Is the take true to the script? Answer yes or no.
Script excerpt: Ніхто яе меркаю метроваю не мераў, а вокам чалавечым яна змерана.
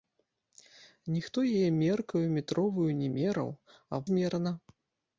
no